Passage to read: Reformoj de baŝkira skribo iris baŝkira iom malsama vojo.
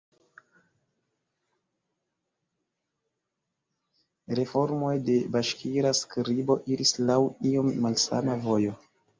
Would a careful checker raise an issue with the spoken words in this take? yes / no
yes